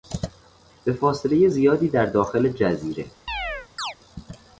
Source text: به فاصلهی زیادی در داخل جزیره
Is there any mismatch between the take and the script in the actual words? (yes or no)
no